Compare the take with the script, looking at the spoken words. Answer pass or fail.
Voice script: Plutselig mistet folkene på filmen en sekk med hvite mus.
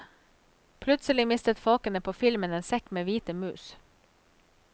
pass